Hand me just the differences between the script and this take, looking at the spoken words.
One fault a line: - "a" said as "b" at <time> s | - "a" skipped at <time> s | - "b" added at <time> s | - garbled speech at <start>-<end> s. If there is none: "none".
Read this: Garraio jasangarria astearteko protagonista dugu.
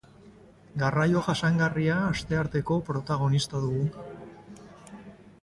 none